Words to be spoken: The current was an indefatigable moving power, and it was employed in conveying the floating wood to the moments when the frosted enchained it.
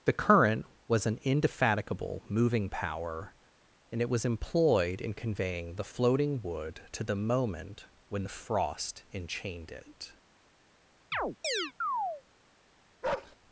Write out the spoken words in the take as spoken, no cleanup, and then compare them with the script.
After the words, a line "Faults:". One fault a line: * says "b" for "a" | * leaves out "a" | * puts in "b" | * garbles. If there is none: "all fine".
The current was an indefatigable moving power, and it was employed in conveying the floating wood to the moment when the frost enchained it.
Faults:
* says "moment" for "moments"
* says "frost" for "frosted"